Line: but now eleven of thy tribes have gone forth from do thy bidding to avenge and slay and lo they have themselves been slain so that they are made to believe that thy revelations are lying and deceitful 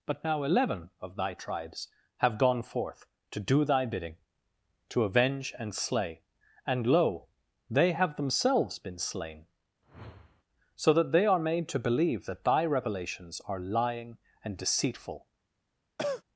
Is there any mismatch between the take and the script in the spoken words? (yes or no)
yes